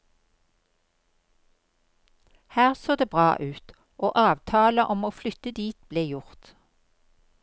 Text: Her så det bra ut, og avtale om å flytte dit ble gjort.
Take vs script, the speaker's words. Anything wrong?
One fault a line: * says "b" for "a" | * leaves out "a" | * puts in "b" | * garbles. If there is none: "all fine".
all fine